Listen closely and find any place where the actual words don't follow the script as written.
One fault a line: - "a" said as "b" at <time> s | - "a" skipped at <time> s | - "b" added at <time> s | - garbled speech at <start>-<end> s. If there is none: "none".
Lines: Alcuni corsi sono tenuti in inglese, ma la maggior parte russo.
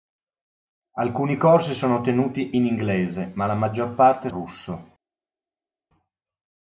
none